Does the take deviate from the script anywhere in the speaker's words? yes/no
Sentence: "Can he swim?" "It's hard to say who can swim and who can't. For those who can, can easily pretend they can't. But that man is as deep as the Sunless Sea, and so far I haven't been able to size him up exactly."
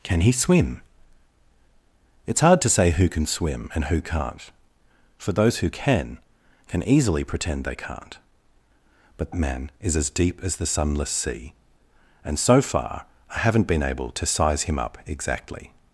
yes